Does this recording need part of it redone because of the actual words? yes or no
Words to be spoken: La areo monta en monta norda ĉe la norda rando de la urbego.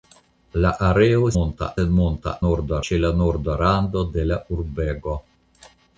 no